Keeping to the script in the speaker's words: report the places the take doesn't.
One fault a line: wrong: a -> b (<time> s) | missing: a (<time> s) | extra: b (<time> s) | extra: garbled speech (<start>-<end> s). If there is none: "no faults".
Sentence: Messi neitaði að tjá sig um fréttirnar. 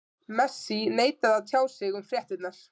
no faults